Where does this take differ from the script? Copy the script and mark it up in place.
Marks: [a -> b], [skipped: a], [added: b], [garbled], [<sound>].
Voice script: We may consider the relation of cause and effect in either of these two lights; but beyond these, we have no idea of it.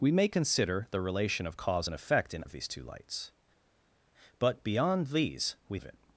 We may consider the relation of cause and effect in [skipped: either] of these two lights; but beyond these, we [skipped: have no idea] of it.